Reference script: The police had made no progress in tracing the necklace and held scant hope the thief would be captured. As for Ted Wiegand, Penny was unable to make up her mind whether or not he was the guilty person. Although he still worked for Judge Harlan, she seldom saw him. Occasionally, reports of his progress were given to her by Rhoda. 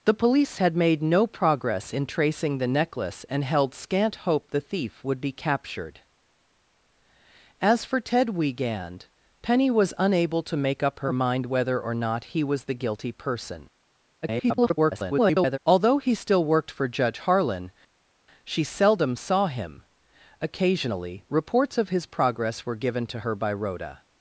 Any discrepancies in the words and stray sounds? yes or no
yes